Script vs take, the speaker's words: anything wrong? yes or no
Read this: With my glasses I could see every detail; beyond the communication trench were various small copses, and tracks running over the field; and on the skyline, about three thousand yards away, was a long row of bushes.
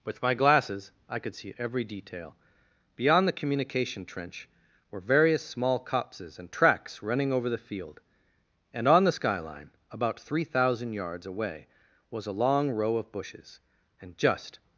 yes